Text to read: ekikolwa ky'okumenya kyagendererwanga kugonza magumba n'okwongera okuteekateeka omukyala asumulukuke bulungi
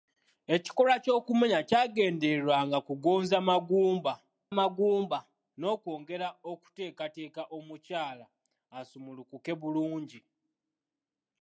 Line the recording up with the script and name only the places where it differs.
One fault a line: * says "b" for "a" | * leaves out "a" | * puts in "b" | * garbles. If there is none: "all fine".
* puts in "magumba"